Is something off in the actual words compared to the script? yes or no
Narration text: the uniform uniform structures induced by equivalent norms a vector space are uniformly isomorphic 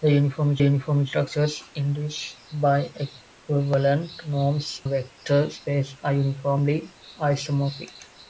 no